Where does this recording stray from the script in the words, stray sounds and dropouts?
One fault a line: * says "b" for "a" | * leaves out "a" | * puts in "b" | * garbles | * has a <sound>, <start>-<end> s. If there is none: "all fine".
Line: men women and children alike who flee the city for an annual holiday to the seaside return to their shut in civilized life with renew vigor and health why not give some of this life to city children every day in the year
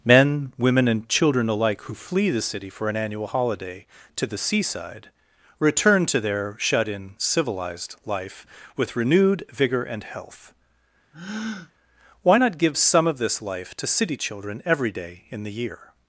* says "renewed" for "renew"
* has a breath, 11.1-11.7 s